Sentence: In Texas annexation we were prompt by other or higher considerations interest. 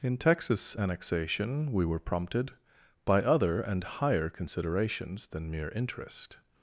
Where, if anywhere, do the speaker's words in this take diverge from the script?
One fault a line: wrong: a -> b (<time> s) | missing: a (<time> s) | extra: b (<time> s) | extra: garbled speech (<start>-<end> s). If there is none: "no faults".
wrong: prompt -> prompted (2.0 s)
wrong: or -> and (3.6 s)
extra: than mere (5.3 s)